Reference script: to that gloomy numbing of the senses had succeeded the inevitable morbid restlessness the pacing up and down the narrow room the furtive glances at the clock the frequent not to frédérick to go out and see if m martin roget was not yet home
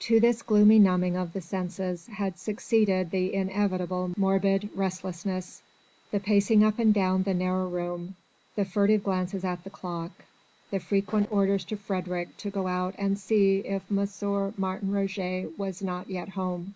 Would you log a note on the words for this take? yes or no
yes